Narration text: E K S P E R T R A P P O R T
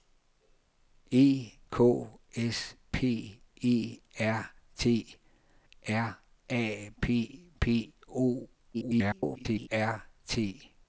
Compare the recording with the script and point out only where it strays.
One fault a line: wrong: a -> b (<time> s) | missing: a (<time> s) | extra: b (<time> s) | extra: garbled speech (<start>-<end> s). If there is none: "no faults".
extra: garbled speech (8.7-9.7 s)